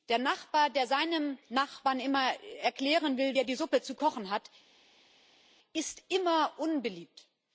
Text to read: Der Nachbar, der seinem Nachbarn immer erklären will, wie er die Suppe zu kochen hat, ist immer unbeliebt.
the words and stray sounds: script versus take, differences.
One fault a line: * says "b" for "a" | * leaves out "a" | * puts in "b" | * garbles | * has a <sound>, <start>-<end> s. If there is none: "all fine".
* leaves out "wie"